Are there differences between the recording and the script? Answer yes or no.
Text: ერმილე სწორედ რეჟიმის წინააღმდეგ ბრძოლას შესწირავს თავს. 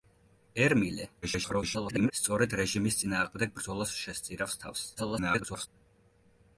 yes